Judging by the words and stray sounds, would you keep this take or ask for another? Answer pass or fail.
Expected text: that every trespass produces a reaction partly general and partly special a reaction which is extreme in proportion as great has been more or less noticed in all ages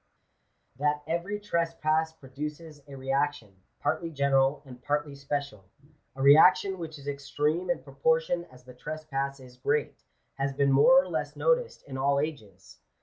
fail